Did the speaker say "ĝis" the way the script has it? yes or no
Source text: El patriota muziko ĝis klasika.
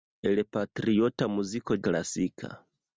no